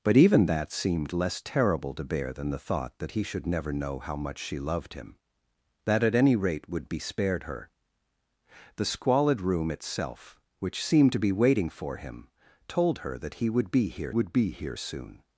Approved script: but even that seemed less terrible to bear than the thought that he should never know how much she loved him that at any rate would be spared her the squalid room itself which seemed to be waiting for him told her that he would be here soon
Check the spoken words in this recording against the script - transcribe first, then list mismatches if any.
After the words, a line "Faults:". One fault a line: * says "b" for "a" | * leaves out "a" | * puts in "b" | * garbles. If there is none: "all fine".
but even that seemed less terrible to bear than the thought that he should never know how much she loved him that at any rate would be spared her the squalid room itself which seemed to be waiting for him told her that he would be here would be here soon
Faults:
* puts in "would be here"